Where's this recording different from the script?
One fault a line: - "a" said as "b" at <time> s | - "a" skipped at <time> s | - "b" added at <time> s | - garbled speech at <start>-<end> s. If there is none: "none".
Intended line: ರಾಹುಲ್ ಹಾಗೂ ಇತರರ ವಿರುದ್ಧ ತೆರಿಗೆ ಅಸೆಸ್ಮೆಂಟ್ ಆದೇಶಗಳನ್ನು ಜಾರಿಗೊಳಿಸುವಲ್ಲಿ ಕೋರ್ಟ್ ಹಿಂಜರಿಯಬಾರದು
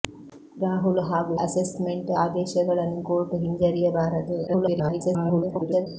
- "ಇತರರ ವಿರುದ್ಧ ತೆರಿಗೆ" skipped at 1.3 s
- "ಜಾರಿಗೊಳಿಸುವಲ್ಲಿ" skipped at 3.0 s
- garbled speech at 4.5-5.9 s